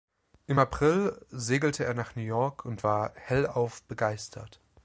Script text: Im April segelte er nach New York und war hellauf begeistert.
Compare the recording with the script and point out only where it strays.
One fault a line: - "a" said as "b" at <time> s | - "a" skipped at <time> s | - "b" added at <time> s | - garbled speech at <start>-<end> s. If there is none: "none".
none